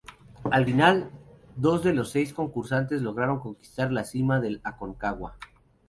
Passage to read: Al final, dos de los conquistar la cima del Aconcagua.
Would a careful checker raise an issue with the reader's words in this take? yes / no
yes